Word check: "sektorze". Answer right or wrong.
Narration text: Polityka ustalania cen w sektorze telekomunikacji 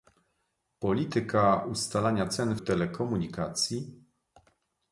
wrong